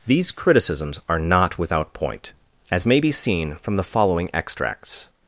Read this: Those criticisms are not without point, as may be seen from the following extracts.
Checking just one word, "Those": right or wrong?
wrong